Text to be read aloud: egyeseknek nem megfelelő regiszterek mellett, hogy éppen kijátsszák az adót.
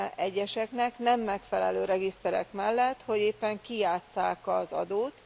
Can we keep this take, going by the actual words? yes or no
yes